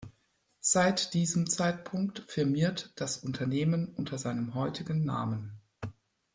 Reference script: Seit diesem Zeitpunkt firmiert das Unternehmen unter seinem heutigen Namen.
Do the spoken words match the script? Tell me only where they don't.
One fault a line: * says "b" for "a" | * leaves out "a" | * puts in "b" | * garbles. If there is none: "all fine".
all fine